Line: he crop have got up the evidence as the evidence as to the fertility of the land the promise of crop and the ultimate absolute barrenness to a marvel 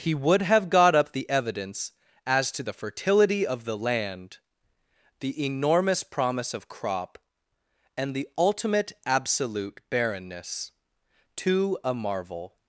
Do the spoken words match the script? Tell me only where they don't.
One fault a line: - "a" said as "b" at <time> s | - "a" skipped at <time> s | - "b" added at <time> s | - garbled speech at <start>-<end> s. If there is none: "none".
- "crop" said as "would" at 0.1 s
- "the evidence as" skipped at 2.5 s
- "enormous" added at 5.4 s